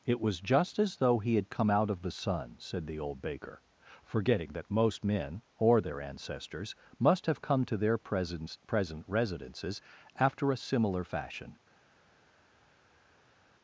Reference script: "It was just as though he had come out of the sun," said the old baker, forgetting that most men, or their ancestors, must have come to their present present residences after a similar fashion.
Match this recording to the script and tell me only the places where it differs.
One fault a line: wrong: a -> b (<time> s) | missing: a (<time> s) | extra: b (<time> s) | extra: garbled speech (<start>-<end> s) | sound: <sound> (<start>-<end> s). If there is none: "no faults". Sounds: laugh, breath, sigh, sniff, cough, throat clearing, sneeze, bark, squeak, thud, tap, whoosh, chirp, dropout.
no faults